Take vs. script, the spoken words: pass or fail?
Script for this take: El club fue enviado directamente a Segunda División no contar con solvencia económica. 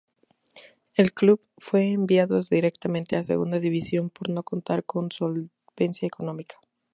fail